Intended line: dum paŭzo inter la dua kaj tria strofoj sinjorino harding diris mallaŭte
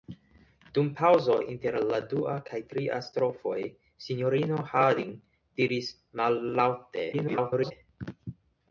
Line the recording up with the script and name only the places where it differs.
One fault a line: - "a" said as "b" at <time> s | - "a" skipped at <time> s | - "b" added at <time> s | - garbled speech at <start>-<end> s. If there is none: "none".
- garbled speech at 7.1-7.7 s